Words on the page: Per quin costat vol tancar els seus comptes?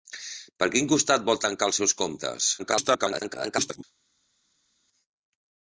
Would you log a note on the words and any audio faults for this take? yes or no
yes